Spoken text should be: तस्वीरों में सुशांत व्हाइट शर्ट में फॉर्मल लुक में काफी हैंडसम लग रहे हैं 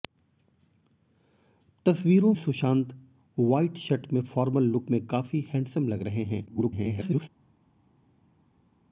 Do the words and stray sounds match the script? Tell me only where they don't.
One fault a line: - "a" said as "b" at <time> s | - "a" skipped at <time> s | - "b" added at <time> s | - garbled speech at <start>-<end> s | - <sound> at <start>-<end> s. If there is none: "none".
- "में" skipped at 2.3 s
- garbled speech at 6.5-7.3 s